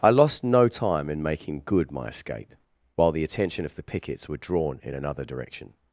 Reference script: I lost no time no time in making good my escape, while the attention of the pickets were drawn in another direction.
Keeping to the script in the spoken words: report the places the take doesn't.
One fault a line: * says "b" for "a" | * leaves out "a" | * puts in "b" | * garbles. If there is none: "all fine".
* leaves out "no time"